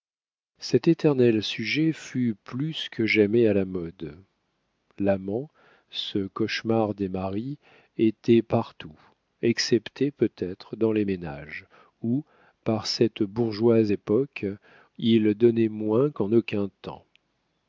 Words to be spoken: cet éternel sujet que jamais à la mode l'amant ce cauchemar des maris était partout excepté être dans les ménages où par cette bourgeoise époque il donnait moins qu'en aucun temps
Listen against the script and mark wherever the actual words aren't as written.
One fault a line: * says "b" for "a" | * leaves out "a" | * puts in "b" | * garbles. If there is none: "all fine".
* puts in "fut plus"
* puts in "peut"